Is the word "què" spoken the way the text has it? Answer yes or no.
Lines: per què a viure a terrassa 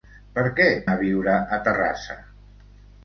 yes